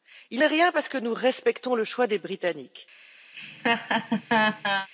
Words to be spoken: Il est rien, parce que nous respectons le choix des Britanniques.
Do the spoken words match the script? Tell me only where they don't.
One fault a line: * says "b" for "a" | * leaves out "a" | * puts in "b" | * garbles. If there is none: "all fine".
all fine